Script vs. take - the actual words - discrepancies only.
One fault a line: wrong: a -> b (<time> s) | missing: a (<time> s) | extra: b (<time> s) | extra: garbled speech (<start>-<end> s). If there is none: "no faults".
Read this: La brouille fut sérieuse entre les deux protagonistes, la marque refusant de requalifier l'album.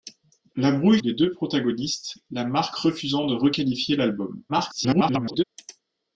missing: fut sérieuse entre (1.0 s)
extra: garbled speech (4.5-5.4 s)